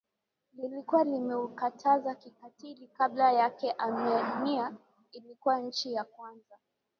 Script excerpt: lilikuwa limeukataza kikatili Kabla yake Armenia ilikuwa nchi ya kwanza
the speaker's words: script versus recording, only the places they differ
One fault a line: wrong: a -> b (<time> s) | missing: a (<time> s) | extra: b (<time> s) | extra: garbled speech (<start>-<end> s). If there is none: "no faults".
no faults